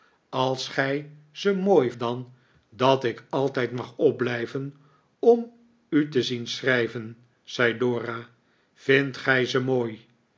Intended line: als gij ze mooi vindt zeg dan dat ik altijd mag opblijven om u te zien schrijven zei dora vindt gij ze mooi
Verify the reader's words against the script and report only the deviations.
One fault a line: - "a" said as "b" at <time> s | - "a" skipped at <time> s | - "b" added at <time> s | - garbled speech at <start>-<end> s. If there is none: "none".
- "vindt zeg" skipped at 1.9 s